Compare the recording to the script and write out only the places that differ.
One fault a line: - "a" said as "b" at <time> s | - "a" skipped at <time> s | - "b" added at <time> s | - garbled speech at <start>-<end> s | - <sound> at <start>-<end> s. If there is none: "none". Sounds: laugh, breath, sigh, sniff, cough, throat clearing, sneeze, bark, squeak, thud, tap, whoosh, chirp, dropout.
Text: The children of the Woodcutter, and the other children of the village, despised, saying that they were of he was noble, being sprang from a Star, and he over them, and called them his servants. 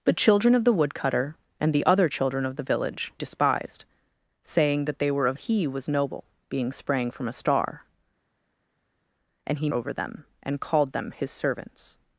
none